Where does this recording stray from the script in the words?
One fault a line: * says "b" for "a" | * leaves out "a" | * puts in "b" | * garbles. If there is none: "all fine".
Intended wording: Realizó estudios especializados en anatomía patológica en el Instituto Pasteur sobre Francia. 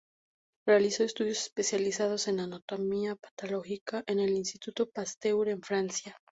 * says "en" for "sobre"